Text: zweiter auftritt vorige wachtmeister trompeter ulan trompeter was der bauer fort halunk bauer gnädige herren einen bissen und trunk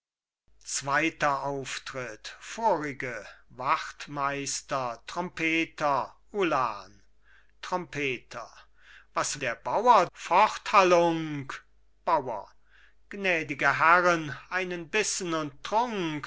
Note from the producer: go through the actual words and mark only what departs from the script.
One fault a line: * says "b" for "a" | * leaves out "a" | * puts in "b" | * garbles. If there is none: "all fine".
all fine